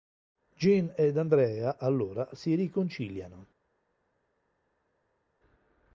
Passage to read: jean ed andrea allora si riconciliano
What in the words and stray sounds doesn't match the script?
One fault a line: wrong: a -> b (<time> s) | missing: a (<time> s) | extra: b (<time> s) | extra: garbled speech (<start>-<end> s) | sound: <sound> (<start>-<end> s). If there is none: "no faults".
no faults